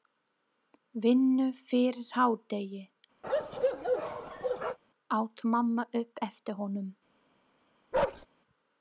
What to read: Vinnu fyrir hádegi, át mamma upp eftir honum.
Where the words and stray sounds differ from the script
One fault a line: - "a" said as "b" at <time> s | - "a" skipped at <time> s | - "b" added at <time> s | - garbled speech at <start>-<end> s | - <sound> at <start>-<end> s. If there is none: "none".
- bark at 3.2-4.8 s
- bark at 7.9-8.3 s